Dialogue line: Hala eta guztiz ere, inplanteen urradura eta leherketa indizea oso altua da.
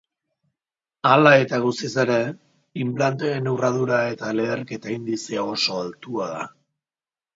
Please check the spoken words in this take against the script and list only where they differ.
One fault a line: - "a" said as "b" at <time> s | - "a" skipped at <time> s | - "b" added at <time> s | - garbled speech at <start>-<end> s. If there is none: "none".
none